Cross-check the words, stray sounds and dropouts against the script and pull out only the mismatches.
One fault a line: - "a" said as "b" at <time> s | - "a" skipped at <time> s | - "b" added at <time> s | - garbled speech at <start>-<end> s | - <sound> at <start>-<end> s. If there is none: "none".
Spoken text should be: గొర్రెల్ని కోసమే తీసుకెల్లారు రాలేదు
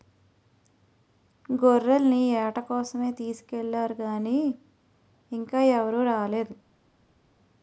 - "ఏట" added at 2.4 s
- "గానీ ఇంకా ఎవరూ" added at 4.0 s